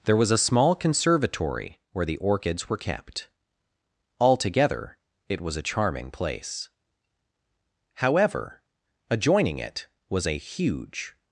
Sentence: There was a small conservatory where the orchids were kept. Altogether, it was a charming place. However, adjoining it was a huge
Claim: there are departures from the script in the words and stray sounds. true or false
false